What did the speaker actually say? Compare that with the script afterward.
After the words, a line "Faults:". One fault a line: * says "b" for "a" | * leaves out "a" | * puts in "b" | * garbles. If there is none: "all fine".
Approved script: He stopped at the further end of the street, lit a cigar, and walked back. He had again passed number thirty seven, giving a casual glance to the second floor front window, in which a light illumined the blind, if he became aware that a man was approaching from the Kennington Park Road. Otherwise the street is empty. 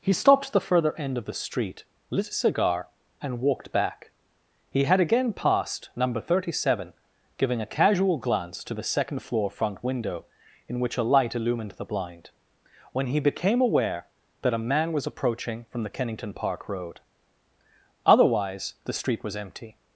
He stopped at the further end of the street, lit a cigar, and walked back. He had again passed number thirty seven, giving a casual glance to the second floor front window, in which a light illumined the blind, when he became aware that a man was approaching from the Kennington Park Road. Otherwise the street was empty.
Faults:
* says "when" for "if"
* says "was" for "is"